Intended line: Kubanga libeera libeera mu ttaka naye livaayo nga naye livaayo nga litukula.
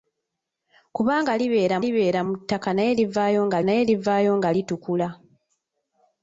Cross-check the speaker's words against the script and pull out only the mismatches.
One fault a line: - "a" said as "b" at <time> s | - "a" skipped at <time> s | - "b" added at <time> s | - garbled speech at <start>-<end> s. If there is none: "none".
none